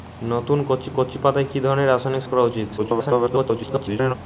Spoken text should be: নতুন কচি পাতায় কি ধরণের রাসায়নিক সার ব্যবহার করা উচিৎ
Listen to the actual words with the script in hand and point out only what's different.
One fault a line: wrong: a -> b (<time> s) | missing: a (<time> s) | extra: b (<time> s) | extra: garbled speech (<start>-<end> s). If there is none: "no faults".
extra: কচি (1.0 s)
missing: সার ব্যবহার (2.2 s)
extra: garbled speech (2.8-4.1 s)